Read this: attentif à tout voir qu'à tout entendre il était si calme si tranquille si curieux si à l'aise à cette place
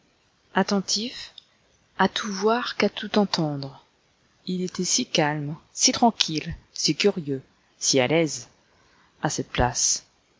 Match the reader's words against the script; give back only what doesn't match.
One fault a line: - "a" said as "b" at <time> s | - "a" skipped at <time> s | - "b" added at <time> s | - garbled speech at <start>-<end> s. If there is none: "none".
none